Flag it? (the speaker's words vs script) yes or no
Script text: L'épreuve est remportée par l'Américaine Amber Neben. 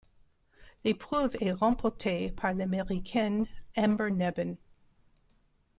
no